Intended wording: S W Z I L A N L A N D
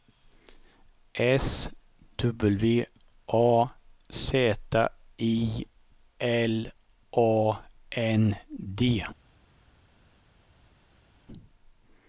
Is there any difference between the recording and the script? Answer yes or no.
yes